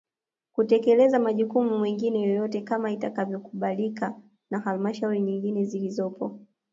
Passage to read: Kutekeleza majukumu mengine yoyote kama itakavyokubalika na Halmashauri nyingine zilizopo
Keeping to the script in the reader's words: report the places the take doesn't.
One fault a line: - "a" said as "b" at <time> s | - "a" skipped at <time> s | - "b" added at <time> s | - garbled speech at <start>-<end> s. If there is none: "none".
none